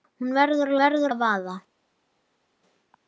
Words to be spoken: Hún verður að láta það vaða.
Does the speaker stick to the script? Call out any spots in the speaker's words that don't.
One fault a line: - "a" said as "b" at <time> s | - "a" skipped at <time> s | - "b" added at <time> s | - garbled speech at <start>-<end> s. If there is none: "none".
- "láta" said as "verður" at 0.8 s